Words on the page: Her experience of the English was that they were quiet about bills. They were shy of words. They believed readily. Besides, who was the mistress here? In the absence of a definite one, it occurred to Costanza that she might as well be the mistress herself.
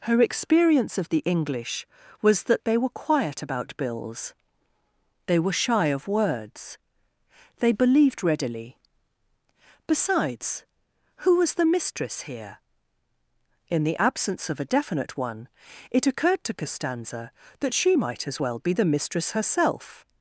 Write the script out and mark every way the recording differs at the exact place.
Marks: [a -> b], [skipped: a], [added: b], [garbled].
Her experience of the English was that they were quiet about bills. They were shy of words. They believed readily. Besides, who was the mistress here? In the absence of a definite one, it occurred to Costanza that she might as well be the mistress herself.